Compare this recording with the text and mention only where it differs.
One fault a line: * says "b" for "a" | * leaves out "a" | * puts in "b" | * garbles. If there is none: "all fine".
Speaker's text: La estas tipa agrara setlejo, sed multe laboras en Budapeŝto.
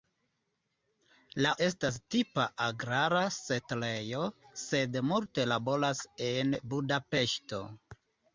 all fine